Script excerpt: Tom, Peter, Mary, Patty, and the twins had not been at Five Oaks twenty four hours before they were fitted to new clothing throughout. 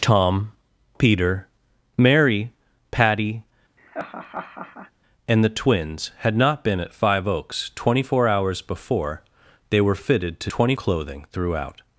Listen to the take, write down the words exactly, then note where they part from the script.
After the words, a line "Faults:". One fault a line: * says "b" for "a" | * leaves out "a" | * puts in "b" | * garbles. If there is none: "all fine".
Tom, Peter, Mary, Patty, and the twins had not been at Five Oaks twenty four hours before they were fitted to twenty clothing throughout.
Faults:
* says "twenty" for "new"